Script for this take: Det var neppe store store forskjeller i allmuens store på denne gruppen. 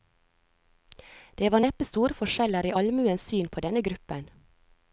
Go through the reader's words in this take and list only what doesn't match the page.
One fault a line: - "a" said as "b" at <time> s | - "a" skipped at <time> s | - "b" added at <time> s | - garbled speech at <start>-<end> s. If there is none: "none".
- "store" skipped at 2.2 s
- "store" said as "syn" at 3.3 s